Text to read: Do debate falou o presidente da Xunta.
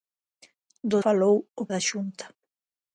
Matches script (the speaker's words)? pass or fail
fail